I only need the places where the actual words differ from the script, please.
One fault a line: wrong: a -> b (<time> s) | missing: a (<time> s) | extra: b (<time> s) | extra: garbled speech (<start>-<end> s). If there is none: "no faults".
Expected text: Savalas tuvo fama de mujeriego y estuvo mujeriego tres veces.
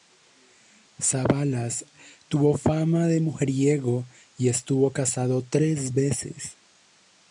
wrong: mujeriego -> casado (4.9 s)